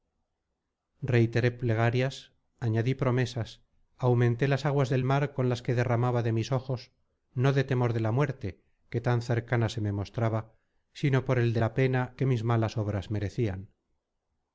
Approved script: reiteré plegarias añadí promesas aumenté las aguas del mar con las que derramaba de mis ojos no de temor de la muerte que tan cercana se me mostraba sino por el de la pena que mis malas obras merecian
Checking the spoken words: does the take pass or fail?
pass